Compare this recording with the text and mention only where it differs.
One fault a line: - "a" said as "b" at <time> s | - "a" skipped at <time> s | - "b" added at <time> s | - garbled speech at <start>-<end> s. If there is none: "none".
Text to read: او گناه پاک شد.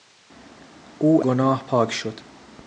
none